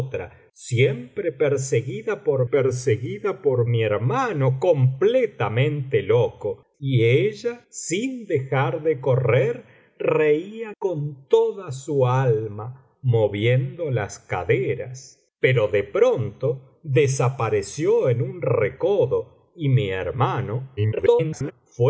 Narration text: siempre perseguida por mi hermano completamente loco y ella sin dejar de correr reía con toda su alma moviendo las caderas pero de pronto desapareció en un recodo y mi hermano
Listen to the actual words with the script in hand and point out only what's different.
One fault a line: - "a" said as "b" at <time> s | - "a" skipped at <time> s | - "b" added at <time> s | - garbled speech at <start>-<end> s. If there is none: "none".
- "perseguida por" added at 2.4 s
- garbled speech at 20.8-21.5 s